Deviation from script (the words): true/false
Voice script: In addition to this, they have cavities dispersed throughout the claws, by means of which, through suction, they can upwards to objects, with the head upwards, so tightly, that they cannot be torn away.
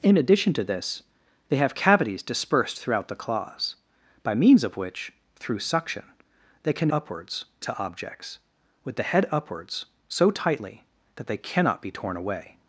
false